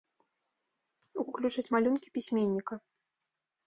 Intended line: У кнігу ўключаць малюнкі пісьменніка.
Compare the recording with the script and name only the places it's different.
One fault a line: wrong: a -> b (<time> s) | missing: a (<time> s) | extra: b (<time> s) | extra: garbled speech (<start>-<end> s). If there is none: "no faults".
missing: кнігу (1.2 s)